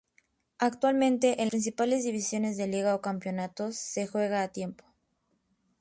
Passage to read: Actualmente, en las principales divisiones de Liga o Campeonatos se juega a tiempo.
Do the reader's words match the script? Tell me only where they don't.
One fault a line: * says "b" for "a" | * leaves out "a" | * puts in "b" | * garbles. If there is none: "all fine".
* leaves out "las"